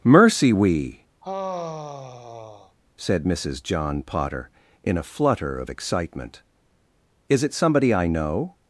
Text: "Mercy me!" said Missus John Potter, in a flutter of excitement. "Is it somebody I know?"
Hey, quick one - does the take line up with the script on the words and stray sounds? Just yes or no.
no